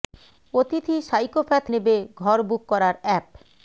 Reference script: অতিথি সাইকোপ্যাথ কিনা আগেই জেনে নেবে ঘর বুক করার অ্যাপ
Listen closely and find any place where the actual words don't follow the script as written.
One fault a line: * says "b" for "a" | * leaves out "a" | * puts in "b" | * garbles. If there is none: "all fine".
* leaves out "কিনা আগেই জেনে"